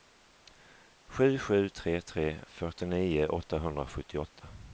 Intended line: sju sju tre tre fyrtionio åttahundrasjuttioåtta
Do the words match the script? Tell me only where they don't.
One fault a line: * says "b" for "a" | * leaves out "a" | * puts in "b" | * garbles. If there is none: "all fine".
all fine